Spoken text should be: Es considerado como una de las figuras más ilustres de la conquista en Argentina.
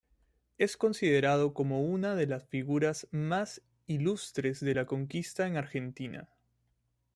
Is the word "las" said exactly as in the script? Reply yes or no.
yes